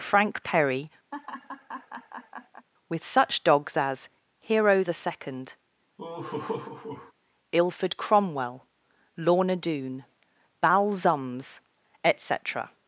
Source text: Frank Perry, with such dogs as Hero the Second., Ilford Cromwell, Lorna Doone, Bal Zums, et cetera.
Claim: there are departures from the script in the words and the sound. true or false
true